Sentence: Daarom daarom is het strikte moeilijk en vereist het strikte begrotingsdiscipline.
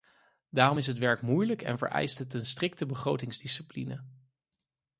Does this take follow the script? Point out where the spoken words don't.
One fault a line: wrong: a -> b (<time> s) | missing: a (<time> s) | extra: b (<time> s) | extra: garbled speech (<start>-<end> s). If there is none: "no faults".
missing: daarom (0.8 s)
wrong: strikte -> werk (1.0 s)
extra: een (2.3 s)